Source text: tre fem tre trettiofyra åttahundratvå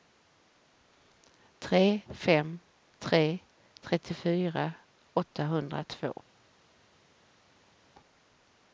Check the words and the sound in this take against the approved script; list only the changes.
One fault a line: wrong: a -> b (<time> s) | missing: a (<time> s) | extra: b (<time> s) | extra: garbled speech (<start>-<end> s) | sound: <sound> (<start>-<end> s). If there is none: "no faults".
no faults